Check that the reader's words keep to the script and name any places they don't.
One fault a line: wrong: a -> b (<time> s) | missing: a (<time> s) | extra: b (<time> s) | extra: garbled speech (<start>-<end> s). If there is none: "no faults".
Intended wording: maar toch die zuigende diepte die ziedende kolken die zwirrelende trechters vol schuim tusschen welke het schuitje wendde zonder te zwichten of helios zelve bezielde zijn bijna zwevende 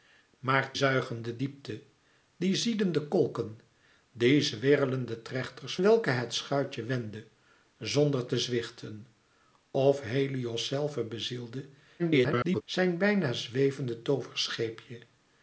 missing: toch die (0.7 s)
missing: vol schuim tusschen (5.8 s)
extra: garbled speech (12.0-12.6 s)